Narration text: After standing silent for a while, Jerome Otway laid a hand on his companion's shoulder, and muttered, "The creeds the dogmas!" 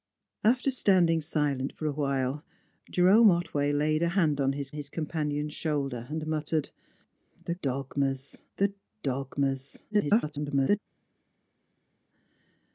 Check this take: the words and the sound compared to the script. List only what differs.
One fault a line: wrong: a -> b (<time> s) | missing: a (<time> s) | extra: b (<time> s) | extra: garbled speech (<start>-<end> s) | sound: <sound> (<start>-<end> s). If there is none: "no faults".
extra: his (4.7 s)
wrong: creeds -> dogmas (7.6 s)
extra: garbled speech (9.9-10.8 s)